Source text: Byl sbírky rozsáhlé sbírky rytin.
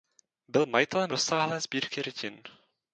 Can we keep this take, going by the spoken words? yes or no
no